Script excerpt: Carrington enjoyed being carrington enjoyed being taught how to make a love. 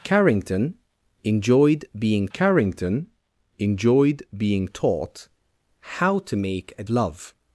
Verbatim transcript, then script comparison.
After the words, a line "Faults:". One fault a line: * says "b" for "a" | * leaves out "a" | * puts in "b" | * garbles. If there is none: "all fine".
Carrington enjoyed being carrington enjoyed being taught how to make a love.
Faults:
all fine